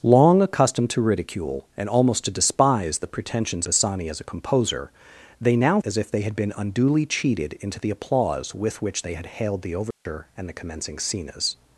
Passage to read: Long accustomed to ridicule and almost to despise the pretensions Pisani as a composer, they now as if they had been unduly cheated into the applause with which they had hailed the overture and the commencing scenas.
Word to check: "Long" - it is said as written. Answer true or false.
true